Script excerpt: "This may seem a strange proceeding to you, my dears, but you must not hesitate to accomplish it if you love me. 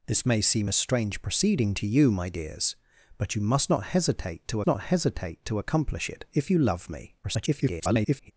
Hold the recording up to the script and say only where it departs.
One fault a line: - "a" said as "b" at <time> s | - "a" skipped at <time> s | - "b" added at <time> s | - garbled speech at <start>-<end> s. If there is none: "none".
- "not hesitate to" added at 4.7 s
- garbled speech at 7.2-8.3 s